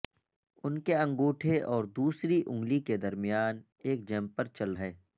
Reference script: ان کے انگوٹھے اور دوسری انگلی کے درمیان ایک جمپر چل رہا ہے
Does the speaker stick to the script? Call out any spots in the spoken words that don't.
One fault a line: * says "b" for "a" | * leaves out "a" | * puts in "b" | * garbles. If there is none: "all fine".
* leaves out "رہا"